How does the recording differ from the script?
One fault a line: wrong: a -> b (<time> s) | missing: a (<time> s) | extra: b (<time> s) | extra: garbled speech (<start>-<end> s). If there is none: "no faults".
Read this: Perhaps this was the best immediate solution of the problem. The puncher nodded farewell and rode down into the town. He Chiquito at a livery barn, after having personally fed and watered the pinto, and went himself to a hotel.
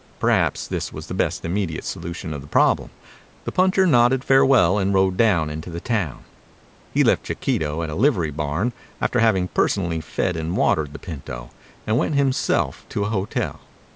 extra: left (7.0 s)